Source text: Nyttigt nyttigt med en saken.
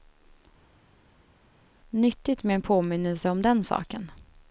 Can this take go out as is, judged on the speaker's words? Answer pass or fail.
fail